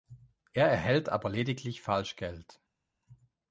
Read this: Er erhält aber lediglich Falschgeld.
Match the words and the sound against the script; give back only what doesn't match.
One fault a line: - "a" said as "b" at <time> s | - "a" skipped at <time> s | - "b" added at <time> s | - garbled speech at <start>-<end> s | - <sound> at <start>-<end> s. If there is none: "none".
none